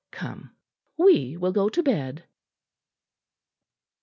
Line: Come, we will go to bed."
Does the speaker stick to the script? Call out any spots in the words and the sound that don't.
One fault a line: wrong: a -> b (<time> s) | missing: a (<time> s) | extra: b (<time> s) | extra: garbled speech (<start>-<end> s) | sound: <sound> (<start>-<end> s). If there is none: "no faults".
no faults